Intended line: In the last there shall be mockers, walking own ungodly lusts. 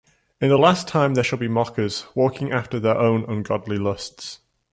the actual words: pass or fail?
fail